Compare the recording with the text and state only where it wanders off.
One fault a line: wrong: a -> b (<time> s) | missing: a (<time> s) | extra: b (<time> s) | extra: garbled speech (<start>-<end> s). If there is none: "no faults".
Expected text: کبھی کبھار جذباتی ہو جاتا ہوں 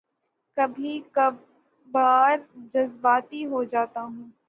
no faults